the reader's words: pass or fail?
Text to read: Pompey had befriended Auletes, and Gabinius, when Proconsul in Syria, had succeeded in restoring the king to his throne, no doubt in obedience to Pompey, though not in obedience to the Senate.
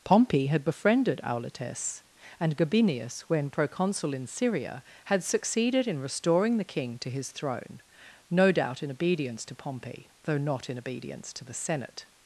pass